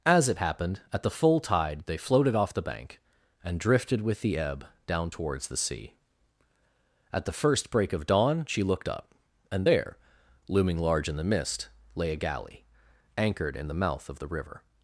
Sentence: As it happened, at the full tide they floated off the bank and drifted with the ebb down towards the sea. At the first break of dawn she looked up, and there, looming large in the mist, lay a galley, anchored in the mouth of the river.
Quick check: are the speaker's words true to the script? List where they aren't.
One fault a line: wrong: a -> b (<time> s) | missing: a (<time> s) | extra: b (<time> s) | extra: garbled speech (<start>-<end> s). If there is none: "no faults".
no faults